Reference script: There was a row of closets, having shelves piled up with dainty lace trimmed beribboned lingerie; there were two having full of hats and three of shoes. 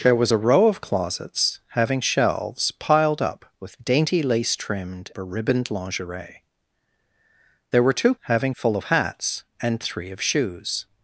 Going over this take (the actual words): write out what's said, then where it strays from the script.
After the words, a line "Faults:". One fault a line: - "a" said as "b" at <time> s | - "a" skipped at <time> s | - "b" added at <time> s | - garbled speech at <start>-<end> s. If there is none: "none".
There was a row of closets, having shelves piled up with dainty lace trimmed beribboned lingerie; there were two having full of hats and three of shoes.
Faults:
none